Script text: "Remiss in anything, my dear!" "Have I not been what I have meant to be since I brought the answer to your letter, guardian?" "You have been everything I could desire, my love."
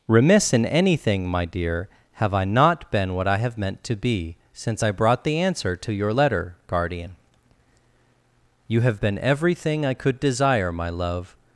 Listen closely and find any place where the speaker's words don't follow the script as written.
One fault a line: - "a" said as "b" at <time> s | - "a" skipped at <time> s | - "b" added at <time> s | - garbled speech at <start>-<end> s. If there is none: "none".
none